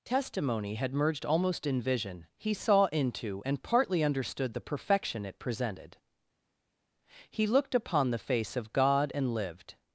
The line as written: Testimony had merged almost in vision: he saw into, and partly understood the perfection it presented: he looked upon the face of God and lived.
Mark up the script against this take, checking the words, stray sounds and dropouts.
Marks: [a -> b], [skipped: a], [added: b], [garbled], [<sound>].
Testimony had merged almost in vision: he saw into, and partly understood the perfection it presented: he looked upon the face of God and lived.